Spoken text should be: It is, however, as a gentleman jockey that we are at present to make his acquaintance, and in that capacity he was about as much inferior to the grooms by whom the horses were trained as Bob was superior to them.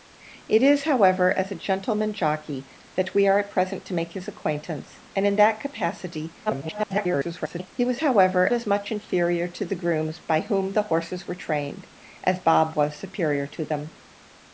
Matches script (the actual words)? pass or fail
fail